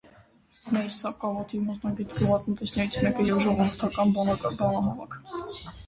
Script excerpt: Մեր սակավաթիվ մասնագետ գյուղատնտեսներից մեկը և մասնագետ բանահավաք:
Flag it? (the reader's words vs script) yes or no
yes